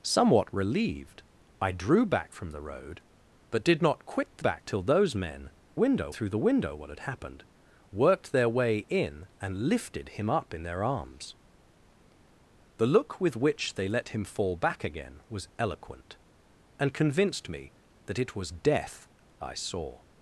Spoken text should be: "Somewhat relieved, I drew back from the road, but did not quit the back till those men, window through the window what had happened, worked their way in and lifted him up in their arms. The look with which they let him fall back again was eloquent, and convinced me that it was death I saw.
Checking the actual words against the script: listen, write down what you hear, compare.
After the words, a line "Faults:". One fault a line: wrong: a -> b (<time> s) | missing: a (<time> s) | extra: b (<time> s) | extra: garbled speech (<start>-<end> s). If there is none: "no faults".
"Somewhat relieved, I drew back from the road, but did not quit the back till those men, window through the window what had happened, worked their way in and lifted him up in their arms. The look with which they let him fall back again was eloquent, and convinced me that it was death I saw.
Faults:
no faults